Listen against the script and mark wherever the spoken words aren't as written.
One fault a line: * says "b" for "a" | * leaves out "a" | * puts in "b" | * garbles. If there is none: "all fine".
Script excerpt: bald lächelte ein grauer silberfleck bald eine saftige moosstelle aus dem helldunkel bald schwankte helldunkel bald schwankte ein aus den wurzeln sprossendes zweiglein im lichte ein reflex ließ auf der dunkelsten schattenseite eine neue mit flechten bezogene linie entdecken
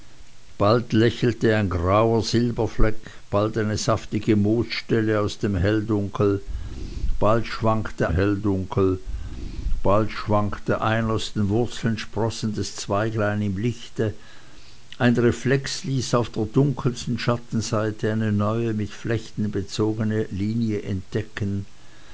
all fine